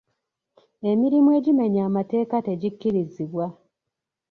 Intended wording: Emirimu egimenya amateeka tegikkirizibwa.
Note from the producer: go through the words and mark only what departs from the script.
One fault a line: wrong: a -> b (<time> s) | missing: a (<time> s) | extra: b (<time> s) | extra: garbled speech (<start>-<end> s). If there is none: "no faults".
no faults